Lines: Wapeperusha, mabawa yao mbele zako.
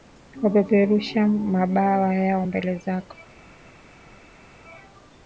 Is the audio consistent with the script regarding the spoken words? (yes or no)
yes